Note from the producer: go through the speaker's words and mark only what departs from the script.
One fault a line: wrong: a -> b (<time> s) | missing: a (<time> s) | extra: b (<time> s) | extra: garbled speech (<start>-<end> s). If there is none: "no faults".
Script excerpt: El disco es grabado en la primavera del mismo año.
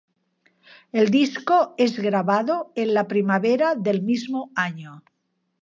no faults